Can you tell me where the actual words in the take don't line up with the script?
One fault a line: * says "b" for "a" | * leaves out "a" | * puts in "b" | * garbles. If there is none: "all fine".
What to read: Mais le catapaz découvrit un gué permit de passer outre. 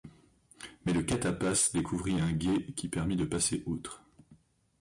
* puts in "qui"